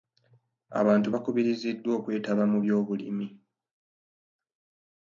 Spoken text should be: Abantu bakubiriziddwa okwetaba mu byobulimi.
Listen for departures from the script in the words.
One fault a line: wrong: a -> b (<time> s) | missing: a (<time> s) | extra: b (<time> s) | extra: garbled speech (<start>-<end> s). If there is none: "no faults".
no faults